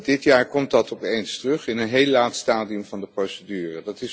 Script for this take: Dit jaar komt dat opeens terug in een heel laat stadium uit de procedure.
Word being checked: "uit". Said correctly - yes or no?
no